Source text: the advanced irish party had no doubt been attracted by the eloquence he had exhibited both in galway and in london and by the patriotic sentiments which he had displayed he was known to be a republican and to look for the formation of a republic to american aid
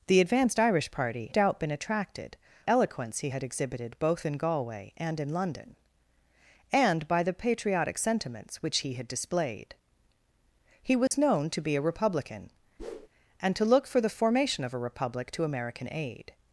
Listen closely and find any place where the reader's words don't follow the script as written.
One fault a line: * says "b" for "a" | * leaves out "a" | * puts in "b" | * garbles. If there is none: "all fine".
* leaves out "had no"
* leaves out "by the"